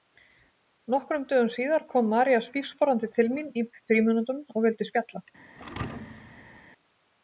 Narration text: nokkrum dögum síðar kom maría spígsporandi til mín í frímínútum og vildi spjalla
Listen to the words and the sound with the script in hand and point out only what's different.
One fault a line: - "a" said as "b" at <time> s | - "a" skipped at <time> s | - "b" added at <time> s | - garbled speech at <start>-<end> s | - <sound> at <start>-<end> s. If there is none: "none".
- thud at 5.6-6.7 s